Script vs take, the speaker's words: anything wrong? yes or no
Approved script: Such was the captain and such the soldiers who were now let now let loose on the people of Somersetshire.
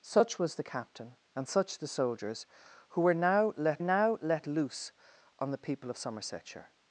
no